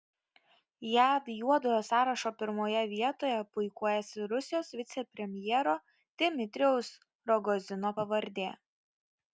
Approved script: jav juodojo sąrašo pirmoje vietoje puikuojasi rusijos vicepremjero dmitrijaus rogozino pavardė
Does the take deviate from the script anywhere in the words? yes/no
no